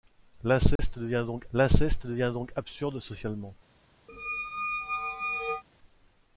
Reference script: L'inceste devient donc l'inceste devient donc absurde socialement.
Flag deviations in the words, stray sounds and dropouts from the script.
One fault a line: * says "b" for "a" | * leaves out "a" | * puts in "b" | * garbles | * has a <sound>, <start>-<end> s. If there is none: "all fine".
* has a dropout, 0.8-0.8 s
* has a squeak, 4.1-5.6 s